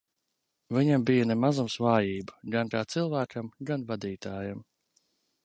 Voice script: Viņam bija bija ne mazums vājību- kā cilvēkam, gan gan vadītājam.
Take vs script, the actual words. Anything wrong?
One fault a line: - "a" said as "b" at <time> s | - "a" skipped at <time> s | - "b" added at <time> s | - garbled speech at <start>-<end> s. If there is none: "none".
- "bija" skipped at 1.3 s
- "gan" added at 2.5 s
- "gan" skipped at 3.9 s